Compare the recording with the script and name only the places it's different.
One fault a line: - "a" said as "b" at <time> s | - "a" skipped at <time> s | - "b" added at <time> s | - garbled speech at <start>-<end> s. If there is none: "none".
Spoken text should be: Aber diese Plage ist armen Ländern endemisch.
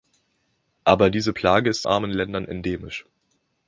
none